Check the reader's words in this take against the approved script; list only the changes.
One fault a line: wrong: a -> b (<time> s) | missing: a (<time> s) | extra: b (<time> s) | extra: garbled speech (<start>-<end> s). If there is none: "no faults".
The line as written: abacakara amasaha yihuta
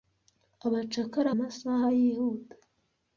no faults